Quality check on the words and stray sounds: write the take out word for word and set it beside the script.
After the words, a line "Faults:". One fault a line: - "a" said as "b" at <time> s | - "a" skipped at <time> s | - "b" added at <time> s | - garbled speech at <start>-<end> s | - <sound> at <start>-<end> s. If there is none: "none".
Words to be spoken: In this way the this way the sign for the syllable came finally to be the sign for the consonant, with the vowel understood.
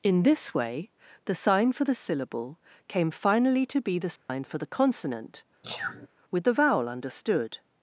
In this way the sign for the syllable came finally to be the sign for the consonant, with the vowel understood.
Faults:
- "this way the" skipped at 1.4 s
- dropout at 4.2-4.3 s
- sneeze at 5.6-6.1 s